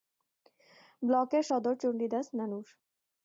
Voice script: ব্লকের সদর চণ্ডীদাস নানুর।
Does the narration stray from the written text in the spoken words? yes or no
no